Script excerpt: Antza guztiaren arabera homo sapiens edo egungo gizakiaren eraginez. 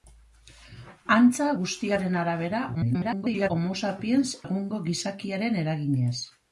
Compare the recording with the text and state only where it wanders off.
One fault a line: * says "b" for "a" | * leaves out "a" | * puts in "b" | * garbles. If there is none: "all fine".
* garbles
* leaves out "edo"